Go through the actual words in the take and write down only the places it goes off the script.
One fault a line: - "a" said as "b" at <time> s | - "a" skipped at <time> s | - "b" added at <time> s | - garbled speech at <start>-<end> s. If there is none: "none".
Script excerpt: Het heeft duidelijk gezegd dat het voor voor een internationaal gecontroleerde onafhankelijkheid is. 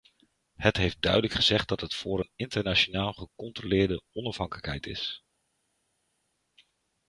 - "voor" skipped at 2.2 s